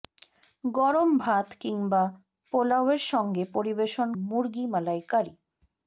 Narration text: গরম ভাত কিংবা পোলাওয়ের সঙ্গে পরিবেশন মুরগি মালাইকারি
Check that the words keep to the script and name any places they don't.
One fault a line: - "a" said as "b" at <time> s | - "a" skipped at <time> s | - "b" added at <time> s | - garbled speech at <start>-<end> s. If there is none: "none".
none